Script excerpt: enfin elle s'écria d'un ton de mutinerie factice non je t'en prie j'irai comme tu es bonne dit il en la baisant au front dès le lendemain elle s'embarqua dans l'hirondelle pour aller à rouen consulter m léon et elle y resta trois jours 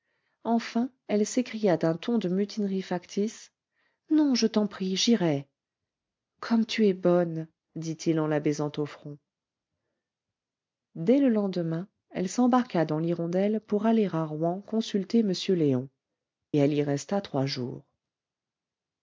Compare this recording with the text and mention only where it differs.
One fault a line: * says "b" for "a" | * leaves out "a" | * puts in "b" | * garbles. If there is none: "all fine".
* leaves out "et"